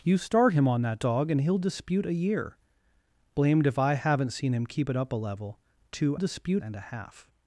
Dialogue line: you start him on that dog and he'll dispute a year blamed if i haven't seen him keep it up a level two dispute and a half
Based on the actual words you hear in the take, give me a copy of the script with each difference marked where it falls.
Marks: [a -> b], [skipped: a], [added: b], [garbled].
you start him on that dog and he'll dispute a year blamed if i haven't seen him keep it up a level two dispute and a half